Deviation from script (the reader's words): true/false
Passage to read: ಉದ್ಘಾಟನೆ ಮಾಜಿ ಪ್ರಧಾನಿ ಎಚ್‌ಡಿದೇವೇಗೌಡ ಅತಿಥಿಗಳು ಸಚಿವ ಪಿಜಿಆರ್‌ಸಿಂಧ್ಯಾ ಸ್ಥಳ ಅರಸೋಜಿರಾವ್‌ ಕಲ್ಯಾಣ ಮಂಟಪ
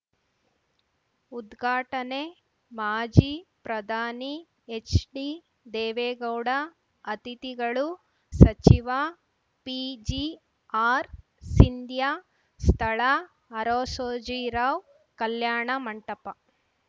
false